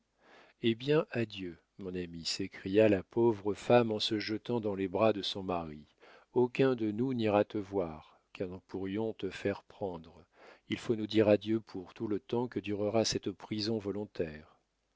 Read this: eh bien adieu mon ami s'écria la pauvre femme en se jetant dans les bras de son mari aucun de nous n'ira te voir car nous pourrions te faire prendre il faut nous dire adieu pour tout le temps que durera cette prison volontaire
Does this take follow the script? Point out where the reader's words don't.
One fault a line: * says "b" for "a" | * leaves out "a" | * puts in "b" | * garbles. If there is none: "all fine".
all fine